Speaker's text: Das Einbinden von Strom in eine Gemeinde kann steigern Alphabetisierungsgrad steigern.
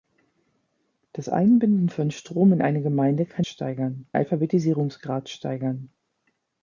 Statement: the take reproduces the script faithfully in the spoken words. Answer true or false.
true